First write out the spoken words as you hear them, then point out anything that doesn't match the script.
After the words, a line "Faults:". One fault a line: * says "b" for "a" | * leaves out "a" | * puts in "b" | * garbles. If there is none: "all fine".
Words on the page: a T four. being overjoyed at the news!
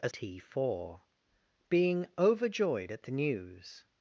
a T four. being overjoyed at the news!
Faults:
all fine